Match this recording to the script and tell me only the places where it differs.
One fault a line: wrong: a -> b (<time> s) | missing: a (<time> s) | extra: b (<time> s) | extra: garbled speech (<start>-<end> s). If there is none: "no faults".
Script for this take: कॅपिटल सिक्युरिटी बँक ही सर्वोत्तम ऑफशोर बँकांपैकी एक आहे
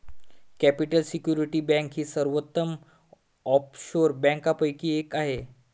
no faults